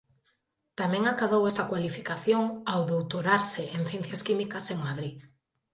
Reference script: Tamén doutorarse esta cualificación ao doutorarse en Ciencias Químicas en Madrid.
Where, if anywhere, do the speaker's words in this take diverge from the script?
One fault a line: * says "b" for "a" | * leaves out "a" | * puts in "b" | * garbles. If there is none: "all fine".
* says "acadou" for "doutorarse"